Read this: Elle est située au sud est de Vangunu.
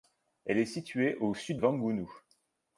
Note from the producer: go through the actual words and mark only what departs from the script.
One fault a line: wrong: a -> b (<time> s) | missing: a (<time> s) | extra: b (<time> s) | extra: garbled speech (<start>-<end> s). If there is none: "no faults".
missing: est de (1.6 s)